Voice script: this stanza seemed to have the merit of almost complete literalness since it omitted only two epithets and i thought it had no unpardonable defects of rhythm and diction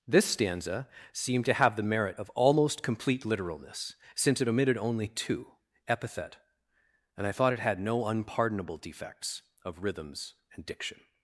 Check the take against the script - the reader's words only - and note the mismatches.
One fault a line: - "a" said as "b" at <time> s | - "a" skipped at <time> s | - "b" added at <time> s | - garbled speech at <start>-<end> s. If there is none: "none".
- "epithets" said as "epithet" at 5.9 s
- "rhythm" said as "rhythms" at 9.8 s